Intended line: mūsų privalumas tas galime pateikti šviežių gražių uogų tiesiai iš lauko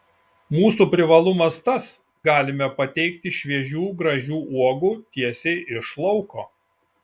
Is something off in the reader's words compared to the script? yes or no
no